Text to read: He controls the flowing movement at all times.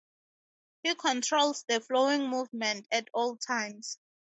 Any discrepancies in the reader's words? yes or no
no